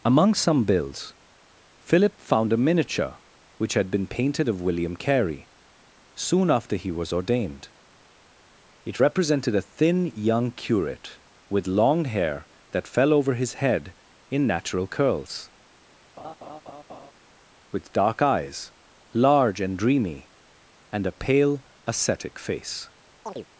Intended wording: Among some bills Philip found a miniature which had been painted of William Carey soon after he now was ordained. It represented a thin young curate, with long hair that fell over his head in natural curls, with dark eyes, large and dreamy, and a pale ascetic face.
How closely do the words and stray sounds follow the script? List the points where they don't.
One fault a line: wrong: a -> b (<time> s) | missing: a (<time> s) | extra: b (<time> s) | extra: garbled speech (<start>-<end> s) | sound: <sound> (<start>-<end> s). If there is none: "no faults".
missing: now (6.9 s)
sound: laugh (16.2-17.1 s)
sound: chirp (23.3-23.5 s)